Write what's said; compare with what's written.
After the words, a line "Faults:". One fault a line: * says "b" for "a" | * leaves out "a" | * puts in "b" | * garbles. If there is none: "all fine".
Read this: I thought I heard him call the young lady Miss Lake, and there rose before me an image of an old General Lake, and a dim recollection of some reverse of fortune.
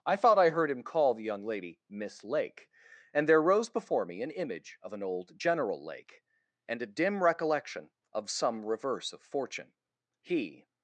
I thought I heard him call the young lady Miss Lake, and there rose before me an image of an old General Lake, and a dim recollection of some reverse of fortune. He
Faults:
* puts in "He"